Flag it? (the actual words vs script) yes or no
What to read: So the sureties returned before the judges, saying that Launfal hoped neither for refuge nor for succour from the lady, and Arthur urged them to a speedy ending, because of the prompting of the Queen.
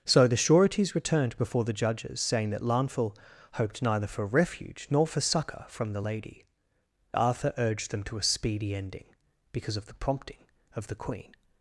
yes